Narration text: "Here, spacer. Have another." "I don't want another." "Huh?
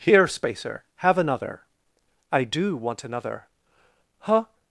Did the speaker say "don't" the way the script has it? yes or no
no